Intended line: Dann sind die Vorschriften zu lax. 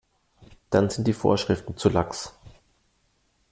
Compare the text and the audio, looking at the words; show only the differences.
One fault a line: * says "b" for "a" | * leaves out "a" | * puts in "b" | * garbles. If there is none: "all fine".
all fine